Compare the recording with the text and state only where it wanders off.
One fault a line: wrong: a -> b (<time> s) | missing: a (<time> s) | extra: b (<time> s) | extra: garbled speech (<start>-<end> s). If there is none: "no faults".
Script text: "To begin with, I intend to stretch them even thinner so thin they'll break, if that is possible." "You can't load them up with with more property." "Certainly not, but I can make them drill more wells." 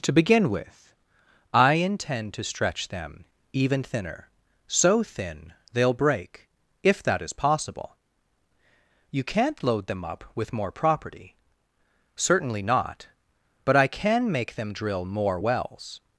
missing: with (10.5 s)